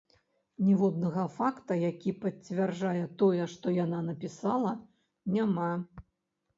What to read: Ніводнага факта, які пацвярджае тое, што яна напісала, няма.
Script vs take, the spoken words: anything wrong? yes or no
no